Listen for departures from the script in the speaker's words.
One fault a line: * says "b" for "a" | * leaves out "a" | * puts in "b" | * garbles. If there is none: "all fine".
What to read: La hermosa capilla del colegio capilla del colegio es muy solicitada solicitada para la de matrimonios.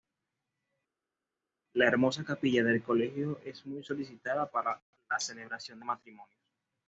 * leaves out "capilla del colegio"
* leaves out "solicitada"
* puts in "celebración"